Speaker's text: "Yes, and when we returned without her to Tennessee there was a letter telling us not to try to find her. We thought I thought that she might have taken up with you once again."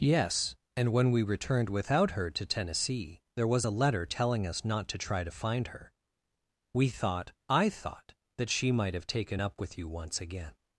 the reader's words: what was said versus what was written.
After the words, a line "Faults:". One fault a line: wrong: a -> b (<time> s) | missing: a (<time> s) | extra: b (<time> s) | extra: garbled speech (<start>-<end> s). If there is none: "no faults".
"Yes, and when we returned without her to Tennessee there was a letter telling us not to try to find her. We thought I thought that she might have taken up with you once again."
Faults:
no faults